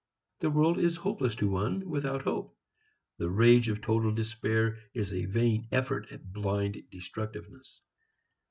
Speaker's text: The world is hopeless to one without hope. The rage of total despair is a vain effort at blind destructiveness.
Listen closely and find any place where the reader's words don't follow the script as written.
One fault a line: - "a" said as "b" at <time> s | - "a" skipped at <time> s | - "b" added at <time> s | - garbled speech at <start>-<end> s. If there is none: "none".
none